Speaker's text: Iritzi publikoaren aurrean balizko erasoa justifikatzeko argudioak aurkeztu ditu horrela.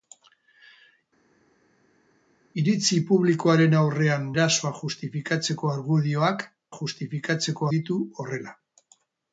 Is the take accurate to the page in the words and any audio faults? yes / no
no